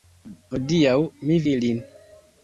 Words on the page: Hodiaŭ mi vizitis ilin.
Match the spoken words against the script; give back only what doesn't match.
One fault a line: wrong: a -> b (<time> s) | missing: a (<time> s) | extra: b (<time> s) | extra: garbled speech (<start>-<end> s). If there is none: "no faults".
missing: vizitis (1.4 s)